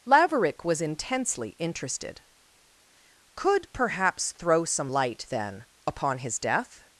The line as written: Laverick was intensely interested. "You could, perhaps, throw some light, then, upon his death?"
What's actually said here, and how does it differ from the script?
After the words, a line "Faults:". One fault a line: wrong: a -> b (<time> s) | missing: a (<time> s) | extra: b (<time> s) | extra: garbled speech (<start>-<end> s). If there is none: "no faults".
Laverick was intensely interested. "could, perhaps, throw some light, then, upon his death?"
Faults:
missing: You (2.2 s)